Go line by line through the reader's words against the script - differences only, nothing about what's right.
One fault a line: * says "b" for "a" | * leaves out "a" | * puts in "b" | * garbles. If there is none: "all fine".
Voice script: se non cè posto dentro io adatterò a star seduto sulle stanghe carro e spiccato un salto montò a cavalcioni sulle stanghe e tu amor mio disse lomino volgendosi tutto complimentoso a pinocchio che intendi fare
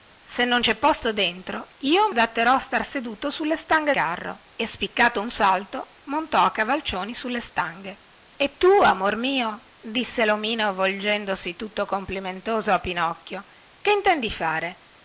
all fine